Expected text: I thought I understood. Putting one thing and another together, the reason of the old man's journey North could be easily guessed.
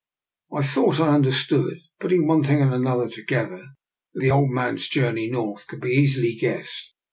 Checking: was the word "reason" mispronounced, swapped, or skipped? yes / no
yes